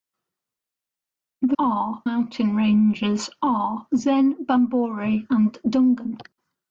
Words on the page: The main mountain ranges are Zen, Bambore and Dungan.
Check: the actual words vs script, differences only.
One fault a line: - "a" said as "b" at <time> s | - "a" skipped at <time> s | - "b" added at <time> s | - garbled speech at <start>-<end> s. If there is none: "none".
- "main" said as "are" at 1.6 s